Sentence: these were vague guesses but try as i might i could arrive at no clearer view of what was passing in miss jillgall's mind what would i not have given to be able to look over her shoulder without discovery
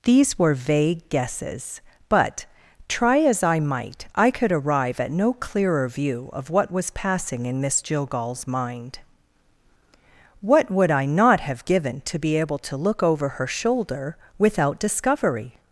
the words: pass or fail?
pass